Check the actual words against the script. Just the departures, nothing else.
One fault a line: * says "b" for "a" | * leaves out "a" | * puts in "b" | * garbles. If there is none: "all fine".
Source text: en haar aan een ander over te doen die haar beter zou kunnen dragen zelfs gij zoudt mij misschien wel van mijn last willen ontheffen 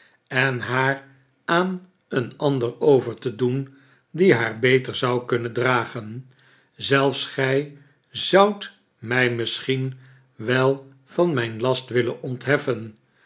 all fine